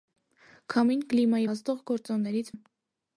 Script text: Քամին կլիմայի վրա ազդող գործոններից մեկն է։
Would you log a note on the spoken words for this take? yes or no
yes